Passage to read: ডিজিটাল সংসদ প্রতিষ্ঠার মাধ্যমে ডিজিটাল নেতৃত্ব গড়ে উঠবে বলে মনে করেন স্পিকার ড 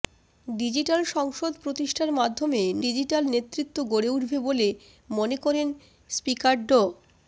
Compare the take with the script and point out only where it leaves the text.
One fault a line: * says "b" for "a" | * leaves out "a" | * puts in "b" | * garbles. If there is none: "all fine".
all fine